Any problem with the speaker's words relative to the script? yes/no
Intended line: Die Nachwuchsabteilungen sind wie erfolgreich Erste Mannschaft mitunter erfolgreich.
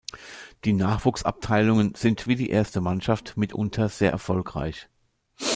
yes